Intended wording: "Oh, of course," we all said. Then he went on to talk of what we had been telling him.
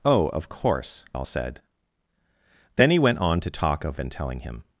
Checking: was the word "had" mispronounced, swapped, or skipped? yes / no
yes